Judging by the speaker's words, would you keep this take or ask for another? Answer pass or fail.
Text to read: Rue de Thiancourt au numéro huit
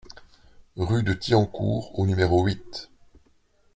pass